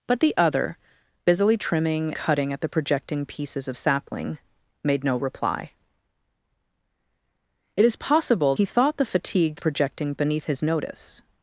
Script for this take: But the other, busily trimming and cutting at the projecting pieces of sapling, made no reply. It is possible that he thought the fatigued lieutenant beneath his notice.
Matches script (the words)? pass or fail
fail